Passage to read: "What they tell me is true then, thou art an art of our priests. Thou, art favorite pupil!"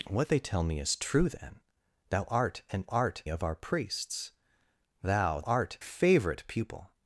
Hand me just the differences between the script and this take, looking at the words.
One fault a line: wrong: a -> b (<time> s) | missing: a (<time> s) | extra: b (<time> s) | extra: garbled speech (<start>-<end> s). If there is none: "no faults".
no faults